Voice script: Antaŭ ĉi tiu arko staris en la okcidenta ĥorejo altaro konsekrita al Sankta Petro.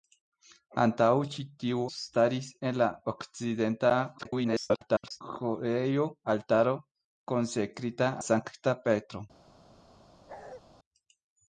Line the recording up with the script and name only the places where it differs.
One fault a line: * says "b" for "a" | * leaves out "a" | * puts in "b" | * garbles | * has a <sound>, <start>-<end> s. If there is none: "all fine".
* leaves out "arko"
* garbles
* leaves out "al"
* has a bark, 10.3-10.6 s